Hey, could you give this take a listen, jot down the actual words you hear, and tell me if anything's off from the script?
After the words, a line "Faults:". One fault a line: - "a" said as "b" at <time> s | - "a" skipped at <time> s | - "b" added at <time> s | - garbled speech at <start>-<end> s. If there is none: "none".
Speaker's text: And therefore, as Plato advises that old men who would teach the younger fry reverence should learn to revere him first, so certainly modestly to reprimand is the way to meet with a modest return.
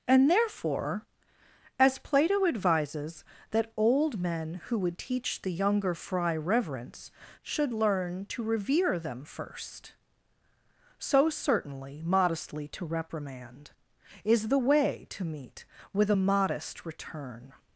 And therefore, as Plato advises that old men who would teach the younger fry reverence should learn to revere them first, so certainly modestly to reprimand is the way to meet with a modest return.
Faults:
- "him" said as "them" at 9.0 s